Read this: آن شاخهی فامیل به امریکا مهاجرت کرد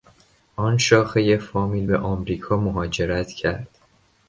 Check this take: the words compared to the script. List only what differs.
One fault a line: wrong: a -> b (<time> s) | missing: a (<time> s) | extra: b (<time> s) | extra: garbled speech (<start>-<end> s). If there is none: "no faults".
no faults